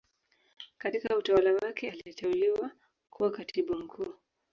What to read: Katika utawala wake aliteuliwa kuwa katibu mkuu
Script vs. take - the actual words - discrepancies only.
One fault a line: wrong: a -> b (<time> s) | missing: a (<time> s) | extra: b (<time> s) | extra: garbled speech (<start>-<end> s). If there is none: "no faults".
no faults